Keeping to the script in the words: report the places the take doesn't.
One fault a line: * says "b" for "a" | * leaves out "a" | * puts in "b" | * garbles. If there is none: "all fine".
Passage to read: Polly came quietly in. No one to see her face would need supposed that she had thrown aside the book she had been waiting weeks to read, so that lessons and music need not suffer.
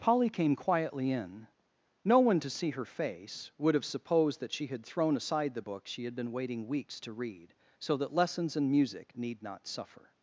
* says "have" for "need"